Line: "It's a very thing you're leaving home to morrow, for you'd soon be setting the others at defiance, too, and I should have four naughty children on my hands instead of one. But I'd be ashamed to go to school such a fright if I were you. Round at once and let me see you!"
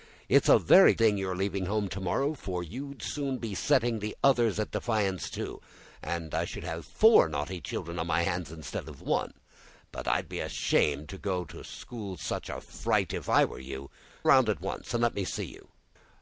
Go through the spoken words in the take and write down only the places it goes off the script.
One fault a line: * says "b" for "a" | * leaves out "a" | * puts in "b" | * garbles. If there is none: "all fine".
all fine